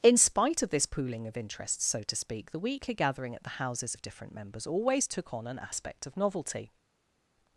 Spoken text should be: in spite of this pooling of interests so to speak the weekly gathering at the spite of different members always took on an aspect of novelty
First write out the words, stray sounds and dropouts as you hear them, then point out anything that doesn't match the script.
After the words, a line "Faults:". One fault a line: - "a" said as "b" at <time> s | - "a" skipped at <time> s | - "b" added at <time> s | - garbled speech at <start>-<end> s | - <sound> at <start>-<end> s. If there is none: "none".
in spite of this pooling of interests so to speak the weekly gathering at the houses of different members always took on an aspect of novelty
Faults:
- "spite" said as "houses" at 3.6 s